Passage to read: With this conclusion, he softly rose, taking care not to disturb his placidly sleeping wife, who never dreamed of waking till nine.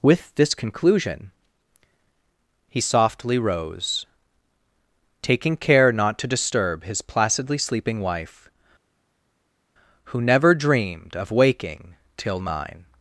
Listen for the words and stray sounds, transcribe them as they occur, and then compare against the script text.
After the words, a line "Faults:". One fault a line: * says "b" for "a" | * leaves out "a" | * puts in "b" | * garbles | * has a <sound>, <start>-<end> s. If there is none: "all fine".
With this conclusion, he softly rose, taking care not to disturb his placidly sleeping wife, who never dreamed of waking till nine.
Faults:
all fine